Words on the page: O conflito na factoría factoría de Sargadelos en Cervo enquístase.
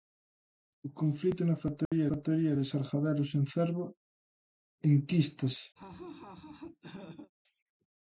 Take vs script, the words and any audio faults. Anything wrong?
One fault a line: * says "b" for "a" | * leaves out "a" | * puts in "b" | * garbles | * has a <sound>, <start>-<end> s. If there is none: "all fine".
* has a dropout, 1.9-1.9 s
* has a laugh, 5.8-7.3 s